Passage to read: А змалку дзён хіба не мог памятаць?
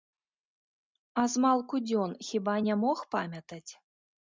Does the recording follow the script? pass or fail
pass